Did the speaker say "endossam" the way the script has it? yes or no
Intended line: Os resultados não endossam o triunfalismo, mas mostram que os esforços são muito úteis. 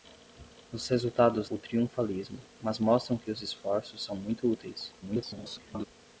no